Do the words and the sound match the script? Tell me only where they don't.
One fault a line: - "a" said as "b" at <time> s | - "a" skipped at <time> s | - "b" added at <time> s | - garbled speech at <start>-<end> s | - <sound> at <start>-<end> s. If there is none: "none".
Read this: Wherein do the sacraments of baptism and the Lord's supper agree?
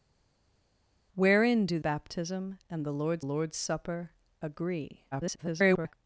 - "the sacraments of" skipped at 1.8 s
- "Lord's" added at 3.2 s
- garbled speech at 5.1-5.9 s